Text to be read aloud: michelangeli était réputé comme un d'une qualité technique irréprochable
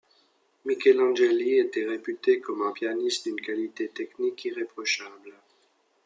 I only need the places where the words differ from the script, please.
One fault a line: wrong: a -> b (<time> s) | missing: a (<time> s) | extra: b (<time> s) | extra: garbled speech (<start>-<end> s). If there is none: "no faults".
extra: pianiste (2.7 s)